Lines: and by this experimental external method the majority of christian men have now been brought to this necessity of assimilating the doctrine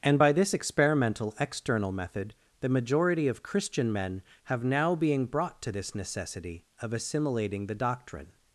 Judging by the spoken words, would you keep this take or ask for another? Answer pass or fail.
fail